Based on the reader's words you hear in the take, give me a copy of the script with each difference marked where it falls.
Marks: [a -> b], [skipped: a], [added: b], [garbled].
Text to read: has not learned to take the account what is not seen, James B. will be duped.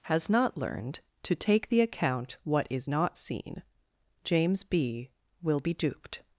has not learned to take the account what is not seen, James B. will be duped.